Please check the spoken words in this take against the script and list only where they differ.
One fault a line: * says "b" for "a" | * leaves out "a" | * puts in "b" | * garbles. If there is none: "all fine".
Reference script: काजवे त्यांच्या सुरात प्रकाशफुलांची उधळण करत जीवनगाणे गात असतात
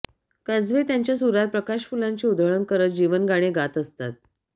all fine